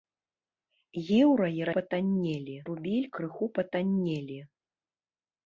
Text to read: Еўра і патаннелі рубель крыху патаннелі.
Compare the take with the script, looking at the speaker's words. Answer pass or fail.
pass